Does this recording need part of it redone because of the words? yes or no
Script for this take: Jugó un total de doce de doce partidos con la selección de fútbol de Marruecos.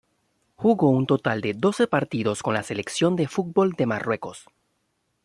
yes